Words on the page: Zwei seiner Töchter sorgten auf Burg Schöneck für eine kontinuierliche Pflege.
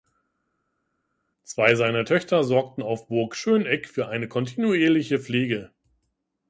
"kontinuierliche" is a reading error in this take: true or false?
false